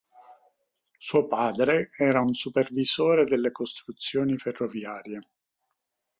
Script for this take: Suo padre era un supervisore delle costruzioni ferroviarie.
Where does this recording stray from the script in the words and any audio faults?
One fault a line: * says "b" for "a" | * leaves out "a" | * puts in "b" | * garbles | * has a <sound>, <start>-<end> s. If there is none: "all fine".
all fine